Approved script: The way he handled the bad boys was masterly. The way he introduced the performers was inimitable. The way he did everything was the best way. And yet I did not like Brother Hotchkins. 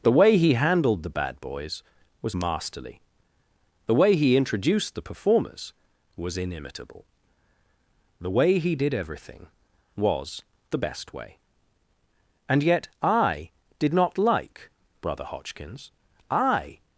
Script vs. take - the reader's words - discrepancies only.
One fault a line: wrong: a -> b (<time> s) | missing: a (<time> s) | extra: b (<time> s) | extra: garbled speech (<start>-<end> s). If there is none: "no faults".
extra: I (16.3 s)